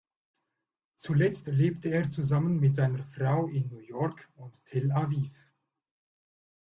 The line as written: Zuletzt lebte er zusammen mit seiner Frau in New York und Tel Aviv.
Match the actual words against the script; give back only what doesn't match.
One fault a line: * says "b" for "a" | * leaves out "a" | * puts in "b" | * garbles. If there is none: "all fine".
all fine